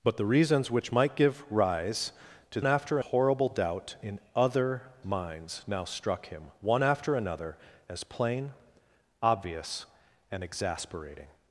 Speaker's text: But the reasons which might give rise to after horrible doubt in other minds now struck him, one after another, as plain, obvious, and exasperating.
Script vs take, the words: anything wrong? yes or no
no